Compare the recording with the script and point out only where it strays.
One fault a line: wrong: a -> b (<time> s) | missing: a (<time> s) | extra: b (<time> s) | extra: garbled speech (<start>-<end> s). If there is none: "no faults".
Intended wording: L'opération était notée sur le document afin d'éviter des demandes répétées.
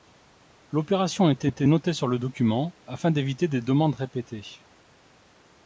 extra: était (1.5 s)